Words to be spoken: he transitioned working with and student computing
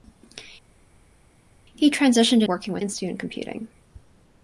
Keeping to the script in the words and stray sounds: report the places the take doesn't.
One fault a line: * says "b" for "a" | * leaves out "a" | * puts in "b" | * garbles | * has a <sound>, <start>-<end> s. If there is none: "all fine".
all fine